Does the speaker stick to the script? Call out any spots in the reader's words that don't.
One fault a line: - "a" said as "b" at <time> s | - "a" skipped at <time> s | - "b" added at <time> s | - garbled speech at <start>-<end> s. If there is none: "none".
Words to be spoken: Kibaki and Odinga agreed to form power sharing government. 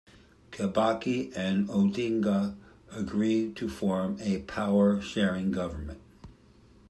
- "a" added at 4.2 s